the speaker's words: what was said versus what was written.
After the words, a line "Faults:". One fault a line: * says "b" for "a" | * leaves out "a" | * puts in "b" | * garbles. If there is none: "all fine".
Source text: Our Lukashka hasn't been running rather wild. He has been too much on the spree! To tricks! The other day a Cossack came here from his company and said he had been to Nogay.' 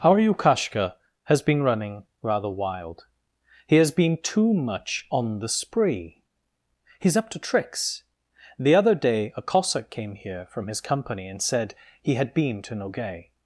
Our Lukashka has been running rather wild. He has been too much on the spree! He's up to tricks! The other day a Cossack came here from his company and said he had been to Nogay.'
Faults:
* says "has" for "hasn't"
* puts in "He's up"